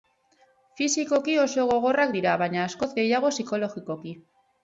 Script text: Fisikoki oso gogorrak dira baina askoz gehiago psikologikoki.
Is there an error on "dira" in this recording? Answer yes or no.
no